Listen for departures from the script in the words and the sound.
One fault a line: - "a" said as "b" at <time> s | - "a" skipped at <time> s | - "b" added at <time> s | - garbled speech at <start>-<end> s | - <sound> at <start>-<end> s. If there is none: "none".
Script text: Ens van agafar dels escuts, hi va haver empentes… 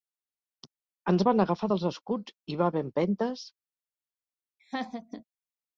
- laugh at 4.6-5.2 s